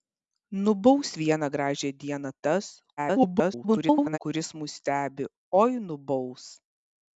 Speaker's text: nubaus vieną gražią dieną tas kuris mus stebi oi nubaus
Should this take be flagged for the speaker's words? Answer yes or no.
yes